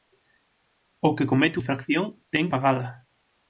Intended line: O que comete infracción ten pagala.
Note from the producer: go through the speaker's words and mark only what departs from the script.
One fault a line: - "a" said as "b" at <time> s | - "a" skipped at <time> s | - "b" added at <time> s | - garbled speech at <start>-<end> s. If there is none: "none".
none